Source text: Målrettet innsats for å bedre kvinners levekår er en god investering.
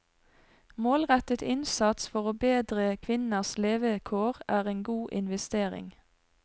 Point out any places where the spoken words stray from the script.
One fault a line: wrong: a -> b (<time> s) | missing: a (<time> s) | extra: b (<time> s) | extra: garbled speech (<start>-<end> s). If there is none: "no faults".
no faults